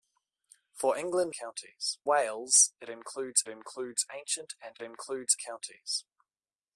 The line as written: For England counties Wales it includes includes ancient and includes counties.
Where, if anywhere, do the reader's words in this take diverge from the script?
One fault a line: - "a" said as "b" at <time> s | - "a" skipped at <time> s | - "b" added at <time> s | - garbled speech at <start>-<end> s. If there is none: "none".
none